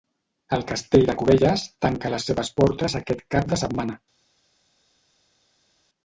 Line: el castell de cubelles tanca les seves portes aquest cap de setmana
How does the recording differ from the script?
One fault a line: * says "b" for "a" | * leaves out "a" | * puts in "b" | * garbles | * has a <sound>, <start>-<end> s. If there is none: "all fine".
all fine